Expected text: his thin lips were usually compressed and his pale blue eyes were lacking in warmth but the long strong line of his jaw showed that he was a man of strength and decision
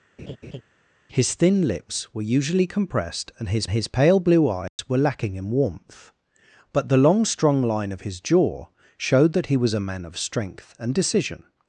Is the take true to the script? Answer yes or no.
no